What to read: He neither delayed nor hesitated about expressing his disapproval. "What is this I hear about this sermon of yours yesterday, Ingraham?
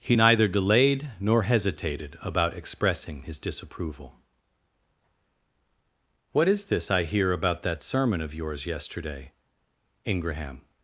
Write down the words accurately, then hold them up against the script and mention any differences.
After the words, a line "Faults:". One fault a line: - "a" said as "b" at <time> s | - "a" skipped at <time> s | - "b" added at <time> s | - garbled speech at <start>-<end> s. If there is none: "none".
He neither delayed nor hesitated about expressing his disapproval. "What is this I hear about that sermon of yours yesterday, Ingraham?
Faults:
- "this" said as "that" at 7.6 s